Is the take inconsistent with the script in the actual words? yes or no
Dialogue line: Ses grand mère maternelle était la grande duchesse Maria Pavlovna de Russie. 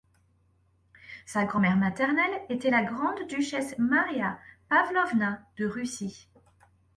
yes